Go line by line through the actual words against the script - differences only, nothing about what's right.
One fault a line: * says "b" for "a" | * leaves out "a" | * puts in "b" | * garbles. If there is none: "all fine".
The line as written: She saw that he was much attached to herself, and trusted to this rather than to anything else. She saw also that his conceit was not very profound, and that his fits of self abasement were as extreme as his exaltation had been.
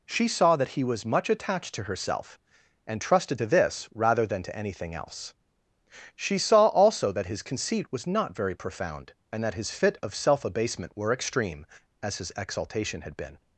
* says "fit" for "fits"
* leaves out "as"